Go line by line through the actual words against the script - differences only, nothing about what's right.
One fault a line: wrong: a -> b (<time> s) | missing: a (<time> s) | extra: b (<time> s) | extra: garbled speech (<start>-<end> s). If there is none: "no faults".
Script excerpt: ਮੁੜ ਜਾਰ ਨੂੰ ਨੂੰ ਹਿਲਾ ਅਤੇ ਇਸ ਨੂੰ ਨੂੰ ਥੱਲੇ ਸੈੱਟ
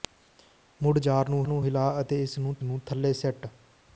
no faults